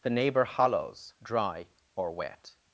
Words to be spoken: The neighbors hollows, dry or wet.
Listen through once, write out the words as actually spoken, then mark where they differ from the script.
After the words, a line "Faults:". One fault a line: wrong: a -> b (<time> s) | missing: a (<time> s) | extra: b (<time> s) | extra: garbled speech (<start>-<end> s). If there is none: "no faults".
The neighbor hollows, dry or wet.
Faults:
wrong: neighbors -> neighbor (0.1 s)